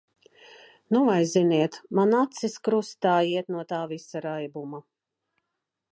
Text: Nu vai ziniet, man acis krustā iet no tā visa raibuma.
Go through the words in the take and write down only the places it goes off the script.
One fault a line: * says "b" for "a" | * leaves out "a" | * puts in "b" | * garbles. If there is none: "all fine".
all fine